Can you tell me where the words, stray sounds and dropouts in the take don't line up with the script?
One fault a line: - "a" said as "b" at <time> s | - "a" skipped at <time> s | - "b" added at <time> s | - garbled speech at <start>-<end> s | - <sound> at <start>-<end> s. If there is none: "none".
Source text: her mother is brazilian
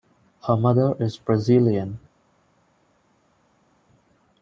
none